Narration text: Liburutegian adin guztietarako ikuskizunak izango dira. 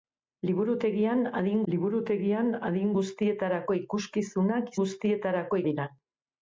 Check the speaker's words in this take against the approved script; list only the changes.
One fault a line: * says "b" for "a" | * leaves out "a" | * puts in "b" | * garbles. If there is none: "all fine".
* puts in "liburutegian adin"
* says "guztietarako" for "izango"